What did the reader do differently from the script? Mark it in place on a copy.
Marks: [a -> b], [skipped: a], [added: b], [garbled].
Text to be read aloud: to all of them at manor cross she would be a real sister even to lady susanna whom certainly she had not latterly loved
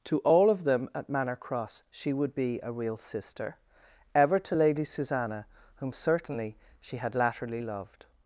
to all of them at manor cross she would be a real sister [even -> ever] to lady susanna whom certainly she had [skipped: not] latterly loved